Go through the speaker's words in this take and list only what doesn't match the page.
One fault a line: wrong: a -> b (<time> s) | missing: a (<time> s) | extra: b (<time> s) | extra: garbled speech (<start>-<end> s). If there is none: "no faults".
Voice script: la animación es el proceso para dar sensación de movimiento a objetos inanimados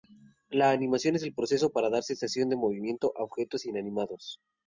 no faults